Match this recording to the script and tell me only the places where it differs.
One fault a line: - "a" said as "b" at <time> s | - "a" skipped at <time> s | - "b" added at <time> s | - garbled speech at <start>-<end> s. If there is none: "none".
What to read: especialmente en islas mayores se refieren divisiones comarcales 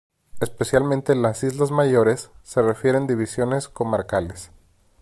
- "las" added at 1.2 s